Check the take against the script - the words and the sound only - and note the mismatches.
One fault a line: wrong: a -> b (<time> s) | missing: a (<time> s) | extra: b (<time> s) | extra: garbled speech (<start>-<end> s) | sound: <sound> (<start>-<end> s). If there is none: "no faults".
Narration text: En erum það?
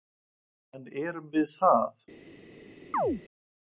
extra: við (1.3 s)
sound: chirp (2.9-3.2 s)